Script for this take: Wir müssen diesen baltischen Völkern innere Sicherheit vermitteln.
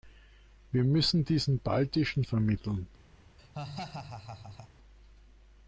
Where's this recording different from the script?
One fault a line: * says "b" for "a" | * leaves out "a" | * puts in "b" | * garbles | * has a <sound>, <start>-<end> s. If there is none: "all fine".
* leaves out "Völkern innere Sicherheit"
* has a laugh, 3.4-4.7 s